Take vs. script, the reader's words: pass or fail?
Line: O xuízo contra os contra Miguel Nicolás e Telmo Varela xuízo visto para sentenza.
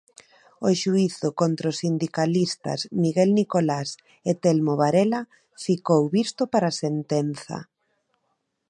fail